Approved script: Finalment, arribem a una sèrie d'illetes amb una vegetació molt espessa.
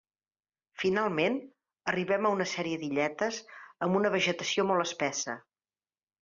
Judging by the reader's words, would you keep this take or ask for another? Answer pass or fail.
pass